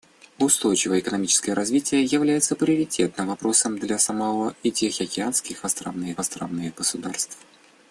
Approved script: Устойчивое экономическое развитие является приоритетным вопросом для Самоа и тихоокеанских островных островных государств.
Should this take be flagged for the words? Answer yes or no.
no